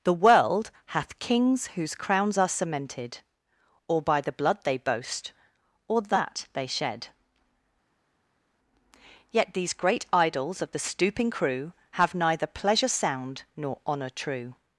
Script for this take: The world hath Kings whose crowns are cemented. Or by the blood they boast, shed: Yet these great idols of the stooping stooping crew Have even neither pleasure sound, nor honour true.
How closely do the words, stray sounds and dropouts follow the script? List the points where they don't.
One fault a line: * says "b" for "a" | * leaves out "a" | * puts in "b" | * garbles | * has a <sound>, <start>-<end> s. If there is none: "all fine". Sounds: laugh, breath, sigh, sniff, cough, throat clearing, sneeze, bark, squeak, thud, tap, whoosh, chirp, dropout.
* puts in "or that they"
* leaves out "stooping"
* leaves out "even"